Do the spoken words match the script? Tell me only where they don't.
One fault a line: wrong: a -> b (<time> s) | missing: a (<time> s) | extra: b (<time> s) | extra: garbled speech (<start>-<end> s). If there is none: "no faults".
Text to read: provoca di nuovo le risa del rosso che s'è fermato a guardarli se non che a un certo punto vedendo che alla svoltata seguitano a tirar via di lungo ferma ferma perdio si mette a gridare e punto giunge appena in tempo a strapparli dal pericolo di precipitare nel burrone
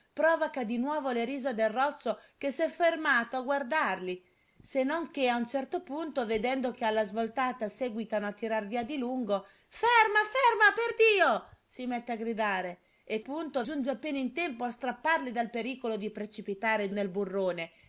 no faults